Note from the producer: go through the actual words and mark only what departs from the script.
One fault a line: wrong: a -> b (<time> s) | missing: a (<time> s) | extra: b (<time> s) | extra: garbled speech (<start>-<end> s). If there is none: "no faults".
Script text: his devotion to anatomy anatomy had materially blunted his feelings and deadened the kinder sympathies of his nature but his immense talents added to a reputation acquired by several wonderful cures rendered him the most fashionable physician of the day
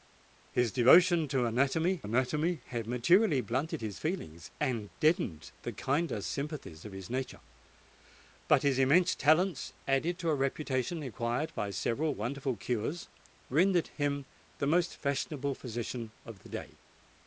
no faults